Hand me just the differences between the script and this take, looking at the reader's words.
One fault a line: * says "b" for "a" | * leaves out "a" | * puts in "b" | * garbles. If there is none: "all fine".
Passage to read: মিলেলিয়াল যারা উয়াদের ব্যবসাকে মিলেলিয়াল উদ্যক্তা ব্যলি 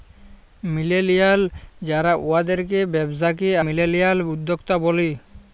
all fine